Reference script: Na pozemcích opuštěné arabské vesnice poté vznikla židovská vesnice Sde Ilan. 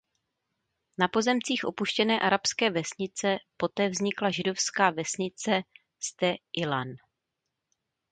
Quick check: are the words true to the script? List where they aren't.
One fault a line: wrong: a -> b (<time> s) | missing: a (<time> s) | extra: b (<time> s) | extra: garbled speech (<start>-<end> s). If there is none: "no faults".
no faults